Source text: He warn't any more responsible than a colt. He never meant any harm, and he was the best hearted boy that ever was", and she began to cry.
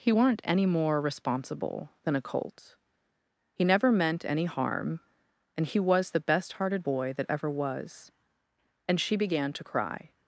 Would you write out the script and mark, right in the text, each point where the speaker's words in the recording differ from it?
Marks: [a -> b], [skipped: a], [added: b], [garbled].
He [warn't -> weren't] any more responsible than a colt. He never meant any harm, and he was the best hearted boy that ever was", and she began to cry.